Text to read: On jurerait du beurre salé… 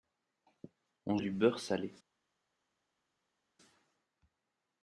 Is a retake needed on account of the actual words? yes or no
yes